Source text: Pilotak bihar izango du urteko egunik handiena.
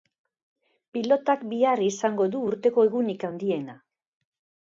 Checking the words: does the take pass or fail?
pass